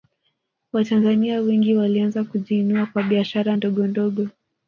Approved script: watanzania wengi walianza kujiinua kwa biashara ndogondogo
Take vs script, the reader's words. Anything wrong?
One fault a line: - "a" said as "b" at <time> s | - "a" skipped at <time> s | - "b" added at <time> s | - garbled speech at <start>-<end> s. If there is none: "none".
none